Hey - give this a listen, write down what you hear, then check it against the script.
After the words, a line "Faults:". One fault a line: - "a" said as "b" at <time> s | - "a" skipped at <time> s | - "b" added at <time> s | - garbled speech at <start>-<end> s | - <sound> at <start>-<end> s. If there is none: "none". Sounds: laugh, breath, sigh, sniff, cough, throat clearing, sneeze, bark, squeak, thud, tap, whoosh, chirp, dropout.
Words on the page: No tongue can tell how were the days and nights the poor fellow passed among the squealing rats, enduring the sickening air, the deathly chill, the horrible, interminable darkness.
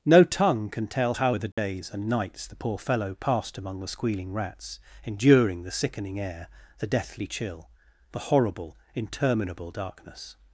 No tongue can tell how were the days and nights the poor fellow passed among the squealing rats, enduring the sickening air, the deathly chill, the horrible, interminable darkness.
Faults:
- dropout at 1.5-1.6 s